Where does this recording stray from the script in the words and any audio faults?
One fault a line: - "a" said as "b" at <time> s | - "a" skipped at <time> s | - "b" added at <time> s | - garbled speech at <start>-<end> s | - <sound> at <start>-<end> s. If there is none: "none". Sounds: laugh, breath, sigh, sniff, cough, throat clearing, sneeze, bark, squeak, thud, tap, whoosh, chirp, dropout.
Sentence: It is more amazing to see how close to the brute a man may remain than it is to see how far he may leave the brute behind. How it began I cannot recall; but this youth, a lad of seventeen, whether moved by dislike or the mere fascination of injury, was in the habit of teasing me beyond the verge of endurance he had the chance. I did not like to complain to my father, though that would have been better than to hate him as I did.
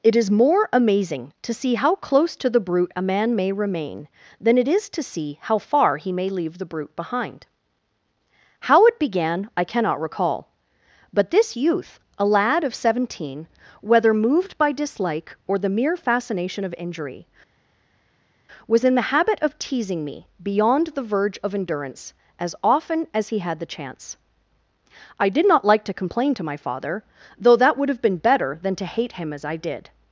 - "as often as" added at 22.4 s